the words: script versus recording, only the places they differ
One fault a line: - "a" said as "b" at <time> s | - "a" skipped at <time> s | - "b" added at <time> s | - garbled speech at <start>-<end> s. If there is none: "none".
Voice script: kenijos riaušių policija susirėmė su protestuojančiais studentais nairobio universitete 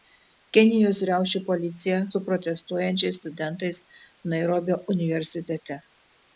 - "susirėmė" skipped at 2.0 s